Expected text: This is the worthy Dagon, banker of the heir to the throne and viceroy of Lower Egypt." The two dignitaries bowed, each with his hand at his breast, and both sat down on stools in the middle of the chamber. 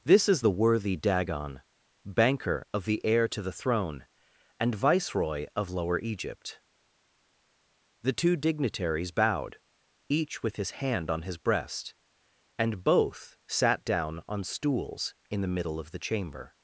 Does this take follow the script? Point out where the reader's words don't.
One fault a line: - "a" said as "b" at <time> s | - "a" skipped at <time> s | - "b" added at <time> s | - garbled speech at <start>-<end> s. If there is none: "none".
- "at" said as "on" at 11.1 s